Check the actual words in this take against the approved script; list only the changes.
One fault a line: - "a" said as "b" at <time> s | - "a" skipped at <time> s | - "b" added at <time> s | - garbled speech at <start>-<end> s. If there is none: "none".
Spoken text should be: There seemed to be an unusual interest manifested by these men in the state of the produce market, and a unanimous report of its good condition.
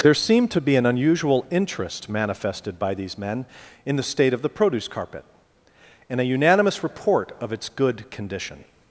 - "market" said as "carpet" at 4.9 s